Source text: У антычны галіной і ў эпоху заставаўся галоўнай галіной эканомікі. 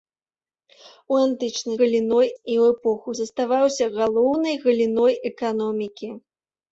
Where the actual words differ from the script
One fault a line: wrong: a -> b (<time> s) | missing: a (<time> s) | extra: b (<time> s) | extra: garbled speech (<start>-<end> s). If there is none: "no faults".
no faults